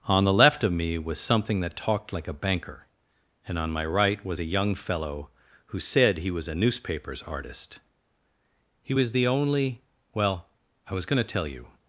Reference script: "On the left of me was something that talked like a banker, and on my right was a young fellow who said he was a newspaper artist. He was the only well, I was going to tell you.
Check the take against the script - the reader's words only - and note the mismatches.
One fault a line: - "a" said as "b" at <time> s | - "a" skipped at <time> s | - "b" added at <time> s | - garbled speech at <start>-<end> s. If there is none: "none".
- "newspaper" said as "newspapers" at 6.5 s